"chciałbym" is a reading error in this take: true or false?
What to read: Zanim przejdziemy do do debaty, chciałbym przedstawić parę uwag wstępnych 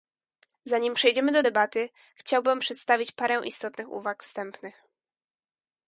false